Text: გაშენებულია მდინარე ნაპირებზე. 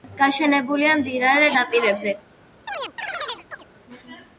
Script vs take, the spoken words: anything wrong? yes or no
no